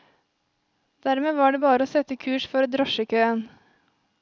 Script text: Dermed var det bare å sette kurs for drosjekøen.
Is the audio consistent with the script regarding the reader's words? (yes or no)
yes